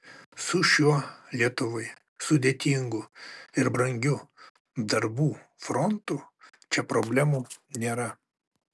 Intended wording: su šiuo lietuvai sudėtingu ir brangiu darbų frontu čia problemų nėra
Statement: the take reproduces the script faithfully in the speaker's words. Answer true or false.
true